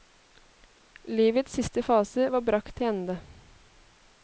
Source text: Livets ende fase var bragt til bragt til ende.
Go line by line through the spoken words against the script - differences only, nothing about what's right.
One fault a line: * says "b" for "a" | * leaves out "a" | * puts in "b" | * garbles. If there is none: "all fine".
* says "siste" for "ende"
* leaves out "bragt til"